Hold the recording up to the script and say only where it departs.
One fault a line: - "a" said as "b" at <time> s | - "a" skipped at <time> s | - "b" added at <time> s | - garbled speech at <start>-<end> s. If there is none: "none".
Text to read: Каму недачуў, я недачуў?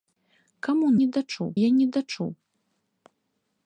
none